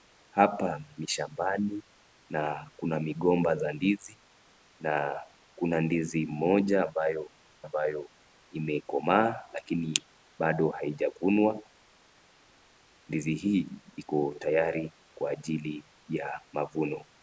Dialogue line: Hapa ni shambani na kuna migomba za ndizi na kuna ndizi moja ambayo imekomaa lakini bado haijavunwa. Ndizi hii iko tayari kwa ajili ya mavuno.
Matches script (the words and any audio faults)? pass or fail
fail